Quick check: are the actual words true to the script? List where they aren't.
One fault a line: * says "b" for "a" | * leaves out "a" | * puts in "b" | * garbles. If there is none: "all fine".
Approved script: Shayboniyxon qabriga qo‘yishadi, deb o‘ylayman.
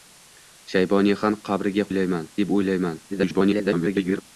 * says "o‘ylayman" for "qo‘yishadi"
* garbles